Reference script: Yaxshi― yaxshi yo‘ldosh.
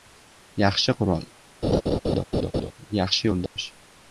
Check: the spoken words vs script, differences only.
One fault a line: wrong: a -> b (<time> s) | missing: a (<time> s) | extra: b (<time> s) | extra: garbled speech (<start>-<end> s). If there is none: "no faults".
extra: qurol (1.0 s)